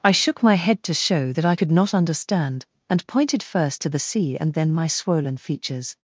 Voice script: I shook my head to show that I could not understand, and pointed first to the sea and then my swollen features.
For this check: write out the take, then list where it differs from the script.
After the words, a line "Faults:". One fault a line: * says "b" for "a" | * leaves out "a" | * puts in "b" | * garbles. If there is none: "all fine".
I shook my head to show that I could not understand, and pointed first to the sea and then my swollen features.
Faults:
all fine